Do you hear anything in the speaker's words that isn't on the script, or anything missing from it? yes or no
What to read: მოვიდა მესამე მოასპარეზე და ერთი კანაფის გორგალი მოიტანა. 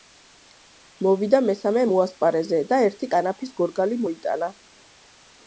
no